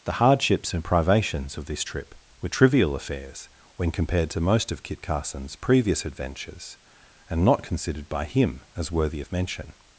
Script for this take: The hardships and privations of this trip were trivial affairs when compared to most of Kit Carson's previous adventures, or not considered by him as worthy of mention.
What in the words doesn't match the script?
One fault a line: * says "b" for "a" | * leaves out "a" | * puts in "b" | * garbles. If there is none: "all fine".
* says "and" for "or"